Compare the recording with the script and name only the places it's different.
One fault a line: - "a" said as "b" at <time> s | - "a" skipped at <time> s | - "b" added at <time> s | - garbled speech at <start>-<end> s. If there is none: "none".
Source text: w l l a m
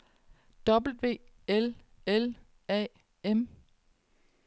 none